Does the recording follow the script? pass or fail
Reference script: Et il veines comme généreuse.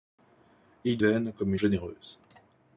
pass